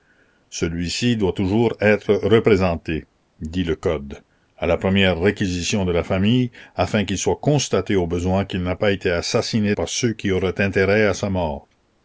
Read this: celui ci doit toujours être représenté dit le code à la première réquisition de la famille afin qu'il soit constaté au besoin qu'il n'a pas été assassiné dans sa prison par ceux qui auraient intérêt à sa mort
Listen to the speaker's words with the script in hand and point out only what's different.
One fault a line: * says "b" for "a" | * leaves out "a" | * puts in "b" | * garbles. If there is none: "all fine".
* leaves out "dans sa prison"